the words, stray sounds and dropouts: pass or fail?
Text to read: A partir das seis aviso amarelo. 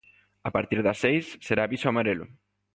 fail